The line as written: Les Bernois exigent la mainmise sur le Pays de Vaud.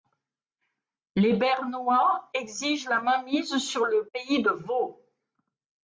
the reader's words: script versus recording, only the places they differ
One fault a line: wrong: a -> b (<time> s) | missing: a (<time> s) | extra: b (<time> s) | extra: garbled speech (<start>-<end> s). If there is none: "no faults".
no faults